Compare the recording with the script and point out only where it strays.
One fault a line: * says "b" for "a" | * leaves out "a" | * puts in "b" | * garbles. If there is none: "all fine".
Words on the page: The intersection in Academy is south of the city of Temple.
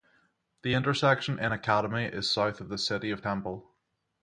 all fine